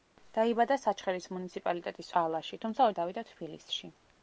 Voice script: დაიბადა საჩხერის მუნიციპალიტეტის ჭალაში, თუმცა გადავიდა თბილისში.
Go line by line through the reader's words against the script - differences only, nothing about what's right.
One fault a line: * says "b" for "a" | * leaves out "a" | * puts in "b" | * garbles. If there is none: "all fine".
all fine